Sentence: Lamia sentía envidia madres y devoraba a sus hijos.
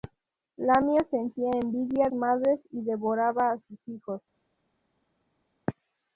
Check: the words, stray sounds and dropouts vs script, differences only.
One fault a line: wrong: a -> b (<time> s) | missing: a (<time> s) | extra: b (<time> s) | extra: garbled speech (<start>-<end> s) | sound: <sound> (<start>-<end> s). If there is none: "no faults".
no faults